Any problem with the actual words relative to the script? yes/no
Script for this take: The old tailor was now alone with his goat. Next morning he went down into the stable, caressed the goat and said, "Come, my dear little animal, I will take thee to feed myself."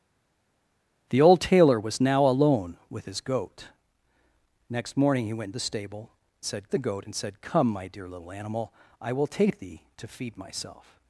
yes